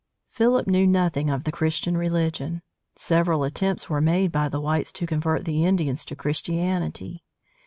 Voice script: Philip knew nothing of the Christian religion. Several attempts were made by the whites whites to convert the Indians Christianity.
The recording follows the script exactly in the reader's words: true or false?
false